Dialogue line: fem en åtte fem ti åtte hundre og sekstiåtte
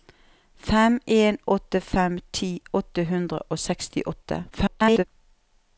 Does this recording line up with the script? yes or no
no